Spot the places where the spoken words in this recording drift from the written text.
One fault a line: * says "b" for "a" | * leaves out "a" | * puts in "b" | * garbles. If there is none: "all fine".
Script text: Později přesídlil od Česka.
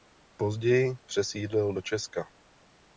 * says "do" for "od"